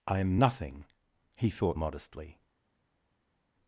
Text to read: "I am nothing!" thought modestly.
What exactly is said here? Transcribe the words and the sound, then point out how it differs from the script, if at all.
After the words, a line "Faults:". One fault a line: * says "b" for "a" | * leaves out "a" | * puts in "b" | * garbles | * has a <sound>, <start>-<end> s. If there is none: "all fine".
"I am nothing!" he thought modestly.
Faults:
* puts in "he"